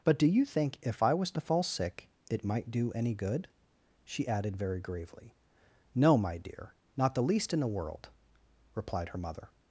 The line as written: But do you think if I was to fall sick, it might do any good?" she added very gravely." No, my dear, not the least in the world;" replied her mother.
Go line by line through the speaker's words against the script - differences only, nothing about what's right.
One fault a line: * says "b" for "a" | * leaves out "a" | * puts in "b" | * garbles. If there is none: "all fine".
all fine